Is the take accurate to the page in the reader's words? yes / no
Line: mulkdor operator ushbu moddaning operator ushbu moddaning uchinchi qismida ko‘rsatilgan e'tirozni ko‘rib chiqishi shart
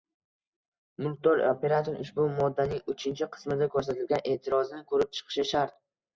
no